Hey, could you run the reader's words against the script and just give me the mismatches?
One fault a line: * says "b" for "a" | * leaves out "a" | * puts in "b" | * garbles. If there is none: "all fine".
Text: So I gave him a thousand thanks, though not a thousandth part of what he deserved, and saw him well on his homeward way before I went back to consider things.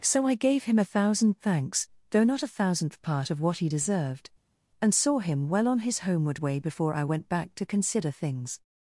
all fine